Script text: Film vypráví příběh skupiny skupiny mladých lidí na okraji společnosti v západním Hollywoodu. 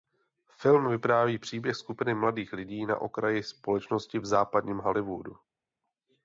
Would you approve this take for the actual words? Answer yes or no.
no